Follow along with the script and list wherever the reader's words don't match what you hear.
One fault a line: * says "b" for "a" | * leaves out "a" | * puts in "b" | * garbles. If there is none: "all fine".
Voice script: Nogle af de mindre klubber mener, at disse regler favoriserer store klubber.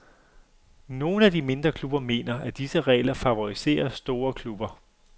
all fine